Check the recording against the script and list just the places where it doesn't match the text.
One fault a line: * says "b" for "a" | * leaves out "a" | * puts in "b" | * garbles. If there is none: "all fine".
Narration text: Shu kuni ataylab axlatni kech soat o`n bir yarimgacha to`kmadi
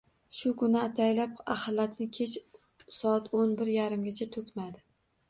all fine